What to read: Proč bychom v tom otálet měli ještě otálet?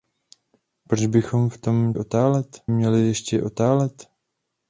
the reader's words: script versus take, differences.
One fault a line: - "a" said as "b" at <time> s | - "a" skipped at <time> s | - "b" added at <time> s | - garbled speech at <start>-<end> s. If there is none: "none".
none